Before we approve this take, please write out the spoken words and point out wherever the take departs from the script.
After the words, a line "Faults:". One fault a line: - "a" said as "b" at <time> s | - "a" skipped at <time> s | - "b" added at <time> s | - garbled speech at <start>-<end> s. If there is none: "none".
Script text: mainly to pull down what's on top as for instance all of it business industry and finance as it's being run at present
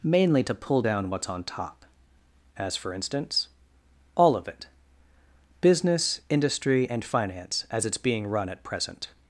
mainly to pull down what's on top as for instance all of it business industry and finance as it's being run at present
Faults:
none